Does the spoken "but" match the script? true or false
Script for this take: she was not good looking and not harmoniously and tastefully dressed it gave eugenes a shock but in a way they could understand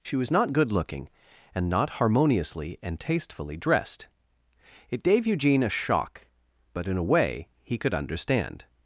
true